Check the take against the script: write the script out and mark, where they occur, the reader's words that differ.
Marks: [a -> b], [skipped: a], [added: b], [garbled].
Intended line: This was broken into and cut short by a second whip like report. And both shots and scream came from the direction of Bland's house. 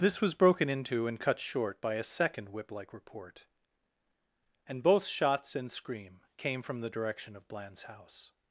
This was broken into and cut short by a second whip like report. And both shots and scream came from the direction of Bland's house.